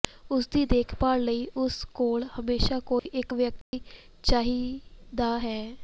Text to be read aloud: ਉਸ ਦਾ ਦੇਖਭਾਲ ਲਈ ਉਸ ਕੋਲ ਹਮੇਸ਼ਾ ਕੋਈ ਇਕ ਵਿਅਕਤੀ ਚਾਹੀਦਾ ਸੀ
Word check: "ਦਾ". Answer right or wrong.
wrong